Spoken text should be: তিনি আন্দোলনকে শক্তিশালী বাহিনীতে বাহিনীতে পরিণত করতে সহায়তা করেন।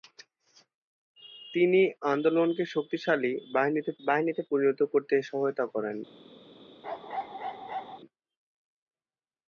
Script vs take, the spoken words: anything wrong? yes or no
no